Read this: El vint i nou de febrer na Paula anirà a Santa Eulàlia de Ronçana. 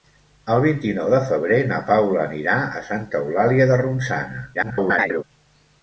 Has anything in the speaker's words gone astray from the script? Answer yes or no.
yes